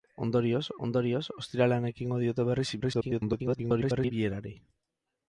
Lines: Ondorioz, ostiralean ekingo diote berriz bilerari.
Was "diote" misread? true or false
false